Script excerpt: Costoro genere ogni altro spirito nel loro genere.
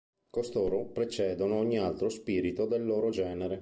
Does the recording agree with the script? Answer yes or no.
no